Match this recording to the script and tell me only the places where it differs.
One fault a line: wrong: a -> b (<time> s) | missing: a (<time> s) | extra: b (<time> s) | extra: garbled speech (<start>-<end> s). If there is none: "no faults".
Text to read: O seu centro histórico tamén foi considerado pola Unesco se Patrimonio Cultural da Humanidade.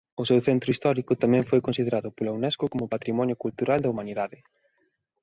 wrong: se -> como (2.7 s)